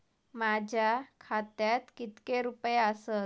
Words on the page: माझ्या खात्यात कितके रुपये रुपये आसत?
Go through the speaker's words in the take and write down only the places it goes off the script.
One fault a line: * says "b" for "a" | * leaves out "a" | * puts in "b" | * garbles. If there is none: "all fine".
* leaves out "रुपये"